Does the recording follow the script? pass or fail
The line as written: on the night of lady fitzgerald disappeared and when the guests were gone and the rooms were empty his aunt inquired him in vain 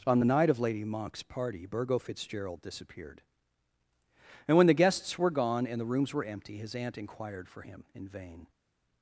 fail